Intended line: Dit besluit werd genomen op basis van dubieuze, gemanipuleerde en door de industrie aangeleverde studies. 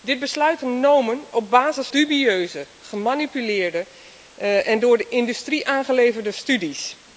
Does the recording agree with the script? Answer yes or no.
no